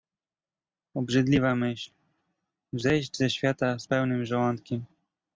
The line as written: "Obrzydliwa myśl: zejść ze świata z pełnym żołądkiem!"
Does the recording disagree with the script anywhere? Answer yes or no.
no